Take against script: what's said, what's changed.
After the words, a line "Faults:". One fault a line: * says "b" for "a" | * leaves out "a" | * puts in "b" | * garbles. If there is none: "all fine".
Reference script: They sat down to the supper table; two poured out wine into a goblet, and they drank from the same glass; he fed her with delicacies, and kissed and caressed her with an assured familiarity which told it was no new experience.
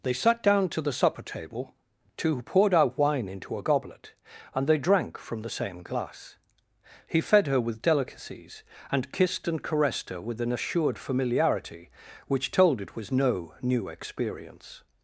They sat down to the supper table; two poured out wine into a goblet, and they drank from the same glass; he fed her with delicacies, and kissed and caressed her with an assured familiarity which told it was no new experience.
Faults:
all fine